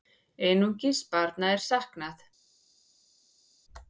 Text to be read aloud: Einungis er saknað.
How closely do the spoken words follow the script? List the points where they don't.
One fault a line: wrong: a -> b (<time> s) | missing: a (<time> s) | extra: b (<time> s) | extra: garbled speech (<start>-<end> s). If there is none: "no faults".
extra: barna (1.1 s)